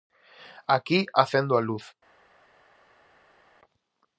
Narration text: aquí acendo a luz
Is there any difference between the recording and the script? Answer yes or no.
no